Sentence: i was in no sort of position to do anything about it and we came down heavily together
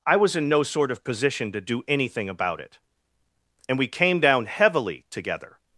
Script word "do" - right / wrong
right